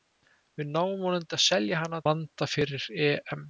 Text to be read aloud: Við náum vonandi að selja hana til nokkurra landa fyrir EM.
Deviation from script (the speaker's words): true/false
true